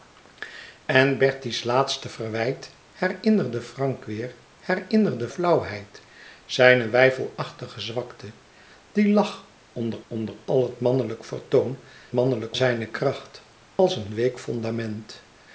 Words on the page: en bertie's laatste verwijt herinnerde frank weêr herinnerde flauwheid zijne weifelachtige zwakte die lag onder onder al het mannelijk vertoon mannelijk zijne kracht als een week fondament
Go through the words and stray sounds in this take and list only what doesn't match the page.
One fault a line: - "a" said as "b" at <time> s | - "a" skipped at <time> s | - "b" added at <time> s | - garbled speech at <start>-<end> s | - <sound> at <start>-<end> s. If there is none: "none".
- dropout at 13.8-13.8 s